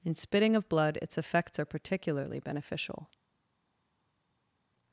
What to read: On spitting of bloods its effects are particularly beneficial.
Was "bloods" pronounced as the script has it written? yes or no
no